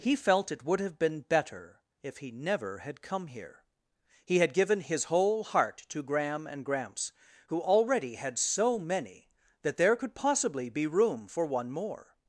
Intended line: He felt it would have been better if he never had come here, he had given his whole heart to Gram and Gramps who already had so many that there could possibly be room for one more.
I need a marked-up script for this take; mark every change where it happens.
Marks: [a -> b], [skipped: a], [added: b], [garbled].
He felt it would have been better if he never had come here, he had given his whole heart to Gram and Gramps who already had so many that there could possibly be room for one more.